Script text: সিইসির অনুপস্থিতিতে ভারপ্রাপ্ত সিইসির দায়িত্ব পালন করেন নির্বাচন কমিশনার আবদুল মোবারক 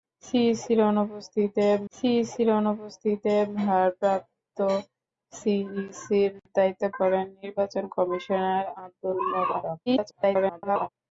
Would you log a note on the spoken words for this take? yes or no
yes